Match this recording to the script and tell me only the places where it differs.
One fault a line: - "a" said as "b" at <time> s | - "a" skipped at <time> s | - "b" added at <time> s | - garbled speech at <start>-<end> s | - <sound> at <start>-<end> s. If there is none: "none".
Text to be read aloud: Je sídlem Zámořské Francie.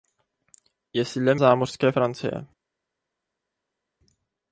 none